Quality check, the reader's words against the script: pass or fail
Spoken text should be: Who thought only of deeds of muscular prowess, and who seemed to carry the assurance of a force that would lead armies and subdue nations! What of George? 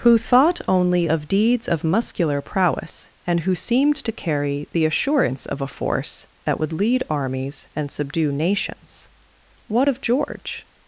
pass